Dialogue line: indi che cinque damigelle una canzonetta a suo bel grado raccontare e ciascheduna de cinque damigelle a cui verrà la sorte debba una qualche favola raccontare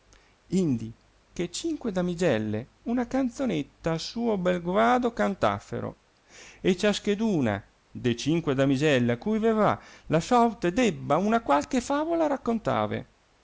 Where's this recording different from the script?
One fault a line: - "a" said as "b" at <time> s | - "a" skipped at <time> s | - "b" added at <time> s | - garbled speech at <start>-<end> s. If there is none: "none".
- "raccontare" said as "cantassero" at 5.1 s